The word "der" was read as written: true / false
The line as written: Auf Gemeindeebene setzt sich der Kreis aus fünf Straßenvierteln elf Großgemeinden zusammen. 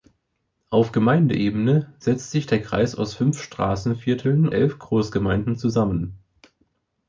true